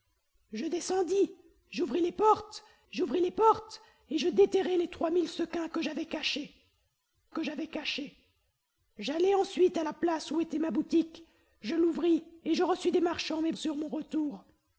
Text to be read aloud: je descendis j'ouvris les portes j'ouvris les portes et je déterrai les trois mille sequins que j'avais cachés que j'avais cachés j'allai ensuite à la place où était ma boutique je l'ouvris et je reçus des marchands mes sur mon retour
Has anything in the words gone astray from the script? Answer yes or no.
no